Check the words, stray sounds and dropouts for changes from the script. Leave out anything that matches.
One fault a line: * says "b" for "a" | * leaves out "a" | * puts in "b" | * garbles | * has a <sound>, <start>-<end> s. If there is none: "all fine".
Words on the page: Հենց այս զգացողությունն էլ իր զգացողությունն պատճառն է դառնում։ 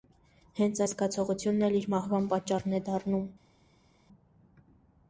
* says "մահվան" for "զգացողությունն"